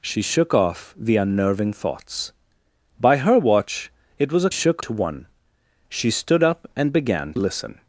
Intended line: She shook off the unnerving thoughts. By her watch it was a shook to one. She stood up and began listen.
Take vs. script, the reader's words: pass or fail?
pass